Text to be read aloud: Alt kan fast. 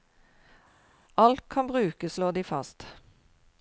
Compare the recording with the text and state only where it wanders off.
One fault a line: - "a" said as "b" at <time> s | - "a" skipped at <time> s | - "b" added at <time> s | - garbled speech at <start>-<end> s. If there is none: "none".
- "brukes slår de" added at 1.7 s